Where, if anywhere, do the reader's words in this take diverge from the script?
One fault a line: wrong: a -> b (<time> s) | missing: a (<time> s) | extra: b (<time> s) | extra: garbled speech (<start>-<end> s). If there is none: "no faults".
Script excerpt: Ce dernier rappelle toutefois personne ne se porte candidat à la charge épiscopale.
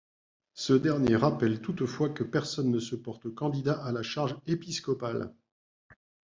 extra: que (2.1 s)